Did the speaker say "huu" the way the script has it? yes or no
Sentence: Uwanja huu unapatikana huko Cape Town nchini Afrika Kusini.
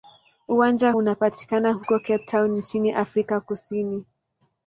no